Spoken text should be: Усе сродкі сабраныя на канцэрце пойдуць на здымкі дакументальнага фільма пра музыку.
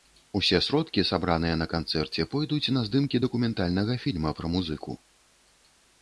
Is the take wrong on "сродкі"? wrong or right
right